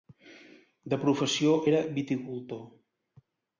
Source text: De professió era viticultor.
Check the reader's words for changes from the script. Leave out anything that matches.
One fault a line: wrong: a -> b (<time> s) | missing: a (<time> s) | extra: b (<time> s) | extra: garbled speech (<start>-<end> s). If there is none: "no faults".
no faults